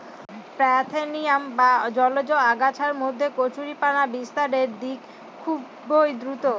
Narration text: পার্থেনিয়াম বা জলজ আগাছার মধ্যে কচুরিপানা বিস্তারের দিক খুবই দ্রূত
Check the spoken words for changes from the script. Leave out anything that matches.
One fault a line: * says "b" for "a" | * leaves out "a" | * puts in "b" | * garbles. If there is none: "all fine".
all fine